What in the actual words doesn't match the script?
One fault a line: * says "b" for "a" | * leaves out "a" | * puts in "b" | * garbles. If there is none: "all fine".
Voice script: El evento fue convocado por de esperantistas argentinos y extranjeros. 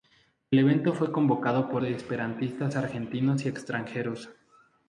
all fine